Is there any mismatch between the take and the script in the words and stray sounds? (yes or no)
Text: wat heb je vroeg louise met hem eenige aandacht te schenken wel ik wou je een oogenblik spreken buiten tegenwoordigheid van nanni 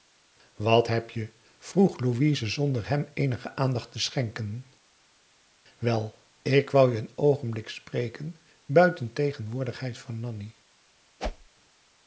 yes